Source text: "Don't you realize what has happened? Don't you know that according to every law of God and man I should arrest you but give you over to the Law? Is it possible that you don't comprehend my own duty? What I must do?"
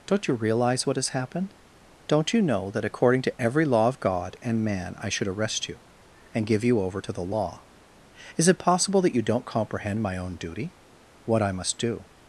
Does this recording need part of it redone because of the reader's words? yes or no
yes